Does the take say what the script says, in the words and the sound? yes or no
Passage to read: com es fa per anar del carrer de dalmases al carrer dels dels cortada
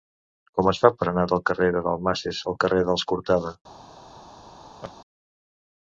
no